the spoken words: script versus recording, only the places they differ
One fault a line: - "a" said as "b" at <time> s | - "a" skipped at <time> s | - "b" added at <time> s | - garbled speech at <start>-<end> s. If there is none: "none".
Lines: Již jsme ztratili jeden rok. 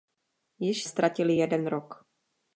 - "jsme" skipped at 0.8 s